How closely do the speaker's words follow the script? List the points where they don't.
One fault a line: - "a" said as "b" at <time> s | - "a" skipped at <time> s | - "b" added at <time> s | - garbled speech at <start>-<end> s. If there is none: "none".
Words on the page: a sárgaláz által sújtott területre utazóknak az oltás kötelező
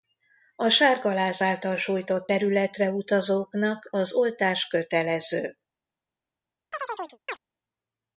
none